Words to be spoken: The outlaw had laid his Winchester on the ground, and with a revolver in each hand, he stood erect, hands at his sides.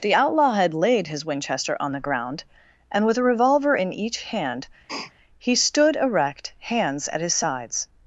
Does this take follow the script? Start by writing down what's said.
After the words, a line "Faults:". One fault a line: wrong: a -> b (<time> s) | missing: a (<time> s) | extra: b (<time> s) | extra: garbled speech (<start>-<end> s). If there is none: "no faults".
The outlaw had laid his Winchester on the ground, and with a revolver in each hand, he stood erect, hands at his sides.
Faults:
no faults